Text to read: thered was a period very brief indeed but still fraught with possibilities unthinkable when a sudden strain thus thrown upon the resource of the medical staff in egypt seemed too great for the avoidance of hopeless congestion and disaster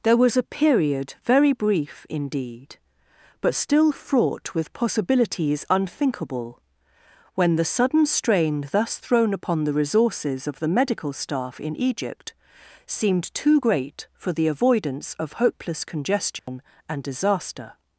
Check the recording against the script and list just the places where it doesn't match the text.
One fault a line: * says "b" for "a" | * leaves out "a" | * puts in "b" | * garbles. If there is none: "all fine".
* says "there" for "thered"
* says "the" for "a"
* says "resources" for "resource"